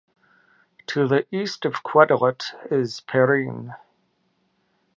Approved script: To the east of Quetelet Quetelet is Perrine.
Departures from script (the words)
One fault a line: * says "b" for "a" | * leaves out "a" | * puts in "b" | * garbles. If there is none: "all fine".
* leaves out "Quetelet"